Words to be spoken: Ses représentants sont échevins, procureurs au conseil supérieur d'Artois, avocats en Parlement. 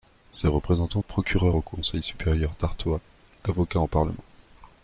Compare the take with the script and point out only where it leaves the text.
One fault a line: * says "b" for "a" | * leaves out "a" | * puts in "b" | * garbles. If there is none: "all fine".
* leaves out "sont échevins"